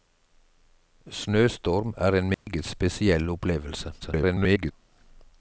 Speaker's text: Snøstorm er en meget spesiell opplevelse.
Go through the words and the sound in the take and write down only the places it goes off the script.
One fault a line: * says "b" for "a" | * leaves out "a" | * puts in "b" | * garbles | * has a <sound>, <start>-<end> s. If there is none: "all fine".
* has a dropout, 2.3-2.5 s
* garbles